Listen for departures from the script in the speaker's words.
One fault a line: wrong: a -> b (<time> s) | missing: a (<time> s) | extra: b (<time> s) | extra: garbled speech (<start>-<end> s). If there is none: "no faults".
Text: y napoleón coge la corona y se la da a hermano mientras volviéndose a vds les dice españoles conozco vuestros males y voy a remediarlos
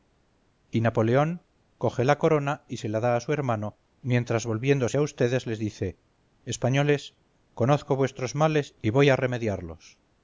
extra: su (3.2 s)